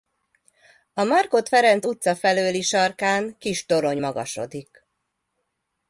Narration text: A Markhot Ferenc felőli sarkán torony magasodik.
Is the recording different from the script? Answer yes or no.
yes